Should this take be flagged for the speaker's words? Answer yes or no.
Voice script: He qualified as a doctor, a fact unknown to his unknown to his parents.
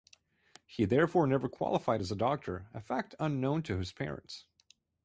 yes